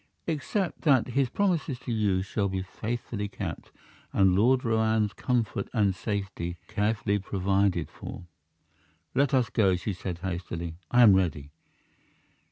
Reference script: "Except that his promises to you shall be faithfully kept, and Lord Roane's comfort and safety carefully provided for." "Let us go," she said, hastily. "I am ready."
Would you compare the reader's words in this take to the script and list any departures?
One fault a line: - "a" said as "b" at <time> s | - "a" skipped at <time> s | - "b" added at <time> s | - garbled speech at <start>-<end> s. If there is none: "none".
none